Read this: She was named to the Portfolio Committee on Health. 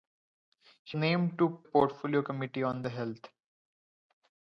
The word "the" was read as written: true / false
false